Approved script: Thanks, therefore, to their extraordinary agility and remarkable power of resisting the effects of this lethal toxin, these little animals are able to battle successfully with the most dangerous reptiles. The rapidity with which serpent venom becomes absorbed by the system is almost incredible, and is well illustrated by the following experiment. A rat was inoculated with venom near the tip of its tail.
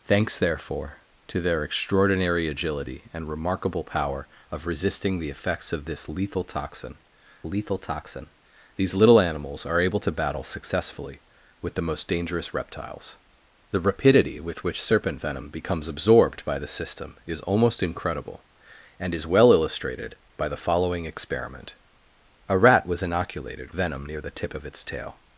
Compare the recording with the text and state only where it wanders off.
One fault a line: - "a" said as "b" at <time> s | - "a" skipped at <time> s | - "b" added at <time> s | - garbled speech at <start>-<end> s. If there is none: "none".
- "lethal toxin" added at 7.4 s
- "with" skipped at 23.8 s